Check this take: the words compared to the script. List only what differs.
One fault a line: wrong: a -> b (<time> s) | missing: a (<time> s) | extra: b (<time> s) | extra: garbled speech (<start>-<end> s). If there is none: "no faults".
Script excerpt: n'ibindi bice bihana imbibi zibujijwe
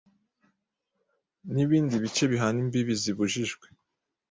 no faults